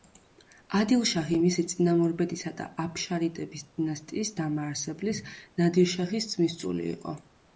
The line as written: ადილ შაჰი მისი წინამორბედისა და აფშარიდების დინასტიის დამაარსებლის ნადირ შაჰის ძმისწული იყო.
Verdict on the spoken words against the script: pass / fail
pass